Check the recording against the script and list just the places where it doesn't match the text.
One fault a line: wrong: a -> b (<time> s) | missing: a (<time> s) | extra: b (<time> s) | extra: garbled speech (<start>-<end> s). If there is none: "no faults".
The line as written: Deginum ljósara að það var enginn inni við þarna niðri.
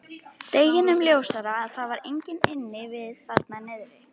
no faults